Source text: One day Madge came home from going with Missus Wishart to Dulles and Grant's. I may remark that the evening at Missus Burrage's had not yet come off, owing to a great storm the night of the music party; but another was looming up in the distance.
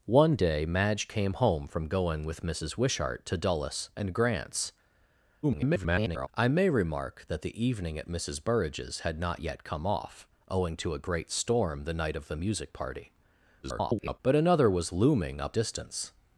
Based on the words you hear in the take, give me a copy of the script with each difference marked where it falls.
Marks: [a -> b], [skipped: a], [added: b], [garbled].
One day Madge came home from going with Missus Wishart to Dulles and Grant's. [garbled] I may remark that the evening at Missus Burrage's had not yet come off, owing to a great storm the night of the music party; [garbled] but another was looming up [skipped: in the] distance.